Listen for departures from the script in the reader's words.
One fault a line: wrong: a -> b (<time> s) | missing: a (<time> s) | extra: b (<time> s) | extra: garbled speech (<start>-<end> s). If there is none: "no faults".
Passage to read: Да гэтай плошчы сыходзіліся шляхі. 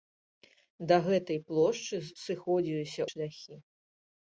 no faults